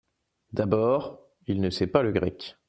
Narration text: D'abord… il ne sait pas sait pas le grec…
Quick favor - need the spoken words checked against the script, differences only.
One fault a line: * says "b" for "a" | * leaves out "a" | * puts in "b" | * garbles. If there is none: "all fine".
* leaves out "sait pas"